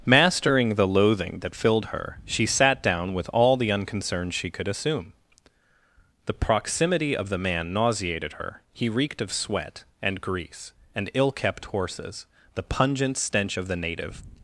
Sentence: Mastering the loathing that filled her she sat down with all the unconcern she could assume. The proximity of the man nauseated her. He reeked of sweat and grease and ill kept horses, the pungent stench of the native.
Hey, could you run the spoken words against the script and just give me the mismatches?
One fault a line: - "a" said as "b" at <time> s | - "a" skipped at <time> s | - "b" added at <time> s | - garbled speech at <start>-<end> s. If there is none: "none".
none